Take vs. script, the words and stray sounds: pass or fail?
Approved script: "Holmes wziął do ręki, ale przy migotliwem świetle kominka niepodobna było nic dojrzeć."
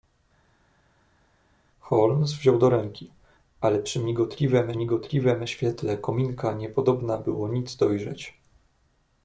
fail